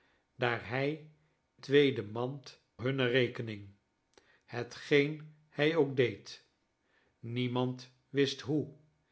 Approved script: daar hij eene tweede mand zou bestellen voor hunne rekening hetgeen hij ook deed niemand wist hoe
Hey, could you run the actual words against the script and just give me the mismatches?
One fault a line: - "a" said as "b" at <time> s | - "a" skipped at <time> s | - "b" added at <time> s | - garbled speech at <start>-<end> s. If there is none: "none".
- "eene" skipped at 1.1 s
- "zou bestellen voor" skipped at 2.6 s